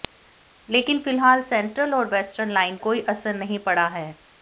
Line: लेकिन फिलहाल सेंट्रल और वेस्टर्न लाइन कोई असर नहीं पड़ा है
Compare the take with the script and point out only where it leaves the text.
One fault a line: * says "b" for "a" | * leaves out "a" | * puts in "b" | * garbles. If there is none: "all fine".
all fine